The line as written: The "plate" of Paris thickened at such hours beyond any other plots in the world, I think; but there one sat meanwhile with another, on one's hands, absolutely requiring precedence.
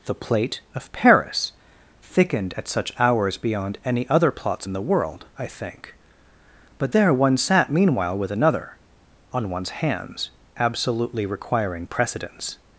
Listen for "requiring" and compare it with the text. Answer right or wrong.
right